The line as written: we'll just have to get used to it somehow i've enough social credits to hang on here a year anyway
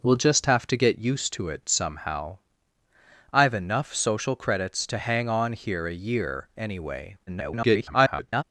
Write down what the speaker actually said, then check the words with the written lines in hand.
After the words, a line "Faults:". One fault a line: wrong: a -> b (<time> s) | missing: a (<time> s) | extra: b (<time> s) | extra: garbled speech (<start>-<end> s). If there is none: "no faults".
we'll just have to get used to it somehow i've enough social credits to hang on here a year anyway [garbled]
Faults:
extra: garbled speech (7.3-8.4 s)